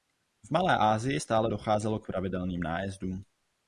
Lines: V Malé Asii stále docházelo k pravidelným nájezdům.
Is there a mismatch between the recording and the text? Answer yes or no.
no